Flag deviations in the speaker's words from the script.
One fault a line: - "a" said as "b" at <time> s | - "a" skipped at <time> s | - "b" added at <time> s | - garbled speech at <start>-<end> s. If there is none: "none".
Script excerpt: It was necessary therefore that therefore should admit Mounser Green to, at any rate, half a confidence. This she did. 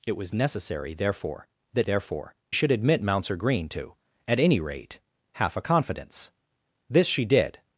none